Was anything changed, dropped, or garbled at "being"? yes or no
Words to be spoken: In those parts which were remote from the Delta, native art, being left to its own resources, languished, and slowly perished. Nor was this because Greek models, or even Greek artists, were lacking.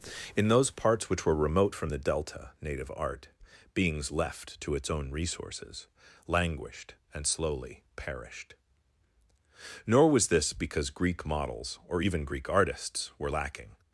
yes